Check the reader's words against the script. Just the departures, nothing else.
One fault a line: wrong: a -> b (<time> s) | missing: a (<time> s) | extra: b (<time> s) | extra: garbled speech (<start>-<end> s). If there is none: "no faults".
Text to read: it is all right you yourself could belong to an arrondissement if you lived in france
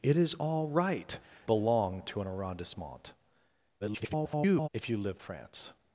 missing: you yourself could (1.2 s)
extra: garbled speech (3.8-4.7 s)
missing: in (5.2 s)